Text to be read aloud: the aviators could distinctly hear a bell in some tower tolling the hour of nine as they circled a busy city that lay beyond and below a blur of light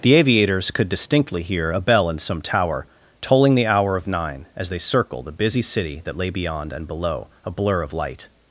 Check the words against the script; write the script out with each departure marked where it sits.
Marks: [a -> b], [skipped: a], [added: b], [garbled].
the aviators could distinctly hear a bell in some tower tolling the hour of nine as they circled a busy city that lay beyond and below a blur of light